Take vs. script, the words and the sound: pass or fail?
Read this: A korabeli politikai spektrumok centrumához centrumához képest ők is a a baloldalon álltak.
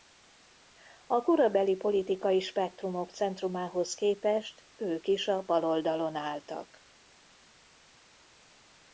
fail